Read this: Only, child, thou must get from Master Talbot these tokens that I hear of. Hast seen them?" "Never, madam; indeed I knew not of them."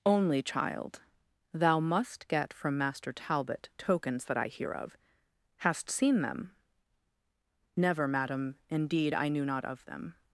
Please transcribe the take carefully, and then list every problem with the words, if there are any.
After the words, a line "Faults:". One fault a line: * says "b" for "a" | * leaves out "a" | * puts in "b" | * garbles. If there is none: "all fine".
Only, child, thou must get from Master Talbot tokens that I hear of. Hast seen them?" "Never, madam; indeed I knew not of them."
Faults:
* leaves out "these"